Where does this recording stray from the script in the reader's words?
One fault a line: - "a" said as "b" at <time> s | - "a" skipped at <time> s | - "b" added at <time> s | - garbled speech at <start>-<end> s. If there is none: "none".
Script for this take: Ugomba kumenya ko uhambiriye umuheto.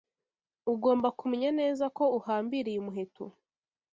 - "neza" added at 1.6 s